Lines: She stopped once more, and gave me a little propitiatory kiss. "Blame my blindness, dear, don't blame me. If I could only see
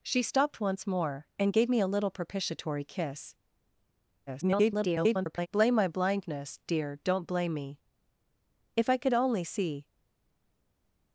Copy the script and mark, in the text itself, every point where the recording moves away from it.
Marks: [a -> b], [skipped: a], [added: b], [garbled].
She stopped once more, and gave me a little propitiatory kiss. [garbled] "Blame my blindness, dear, don't blame me. If I could only see